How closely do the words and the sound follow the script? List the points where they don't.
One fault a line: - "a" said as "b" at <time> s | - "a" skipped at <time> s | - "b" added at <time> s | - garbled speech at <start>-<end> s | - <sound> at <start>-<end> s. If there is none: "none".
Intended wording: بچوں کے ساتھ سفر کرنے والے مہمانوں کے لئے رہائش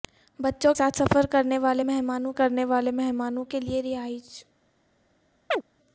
- "کے" skipped at 0.7 s
- "کرنے والے مہمانوں" added at 2.4 s
- chirp at 5.5-5.6 s